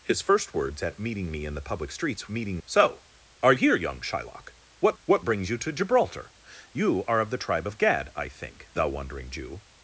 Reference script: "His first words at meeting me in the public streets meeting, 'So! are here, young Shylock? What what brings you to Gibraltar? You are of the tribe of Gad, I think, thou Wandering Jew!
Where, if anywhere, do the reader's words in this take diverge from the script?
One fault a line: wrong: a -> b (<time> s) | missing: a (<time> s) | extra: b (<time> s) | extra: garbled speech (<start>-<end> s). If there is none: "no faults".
no faults